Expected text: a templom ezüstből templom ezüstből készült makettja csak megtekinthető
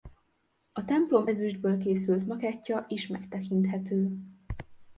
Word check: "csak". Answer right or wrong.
wrong